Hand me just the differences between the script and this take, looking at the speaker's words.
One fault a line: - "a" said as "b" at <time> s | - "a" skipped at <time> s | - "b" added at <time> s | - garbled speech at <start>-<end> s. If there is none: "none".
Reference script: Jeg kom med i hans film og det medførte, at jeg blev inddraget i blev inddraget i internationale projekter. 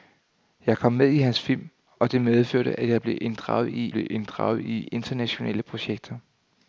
none